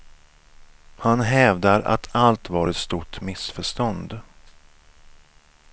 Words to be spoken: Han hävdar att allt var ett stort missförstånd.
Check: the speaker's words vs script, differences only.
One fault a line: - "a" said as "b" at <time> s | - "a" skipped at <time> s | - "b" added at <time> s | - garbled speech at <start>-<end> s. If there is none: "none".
none